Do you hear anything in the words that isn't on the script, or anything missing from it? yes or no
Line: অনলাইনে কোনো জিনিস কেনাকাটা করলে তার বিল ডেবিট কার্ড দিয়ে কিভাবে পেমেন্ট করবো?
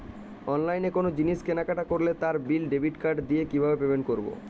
no